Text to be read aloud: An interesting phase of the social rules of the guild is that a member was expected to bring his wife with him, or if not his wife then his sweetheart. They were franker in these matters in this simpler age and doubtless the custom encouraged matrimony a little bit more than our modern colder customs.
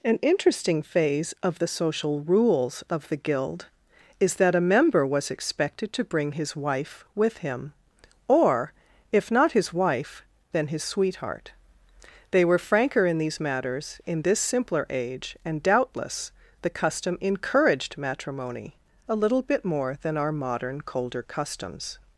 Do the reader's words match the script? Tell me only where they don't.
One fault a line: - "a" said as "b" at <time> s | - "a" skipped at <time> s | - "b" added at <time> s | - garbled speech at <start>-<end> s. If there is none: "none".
none